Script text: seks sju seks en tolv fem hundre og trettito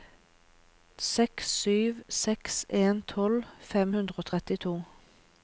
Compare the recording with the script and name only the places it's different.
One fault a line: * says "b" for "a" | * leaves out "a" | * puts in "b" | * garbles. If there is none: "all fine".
all fine